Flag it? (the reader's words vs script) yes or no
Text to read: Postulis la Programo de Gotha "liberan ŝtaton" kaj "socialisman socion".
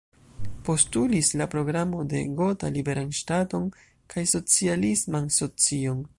no